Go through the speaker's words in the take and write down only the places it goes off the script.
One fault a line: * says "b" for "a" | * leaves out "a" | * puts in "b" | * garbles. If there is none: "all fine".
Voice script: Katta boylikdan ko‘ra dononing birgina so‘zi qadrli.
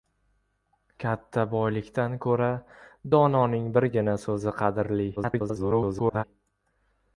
* garbles